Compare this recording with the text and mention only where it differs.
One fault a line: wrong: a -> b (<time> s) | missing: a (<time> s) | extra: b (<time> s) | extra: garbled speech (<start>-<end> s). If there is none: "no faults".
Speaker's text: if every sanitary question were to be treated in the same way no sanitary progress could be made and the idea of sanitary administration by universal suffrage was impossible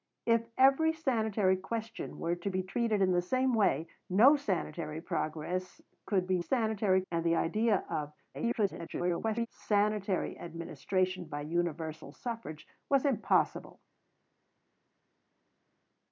wrong: made -> sanitary (6.4 s)
extra: garbled speech (8.3-9.5 s)